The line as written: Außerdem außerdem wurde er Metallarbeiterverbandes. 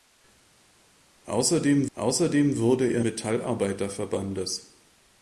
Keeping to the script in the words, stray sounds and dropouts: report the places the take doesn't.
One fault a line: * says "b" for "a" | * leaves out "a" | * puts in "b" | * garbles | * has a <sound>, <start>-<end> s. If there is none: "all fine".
all fine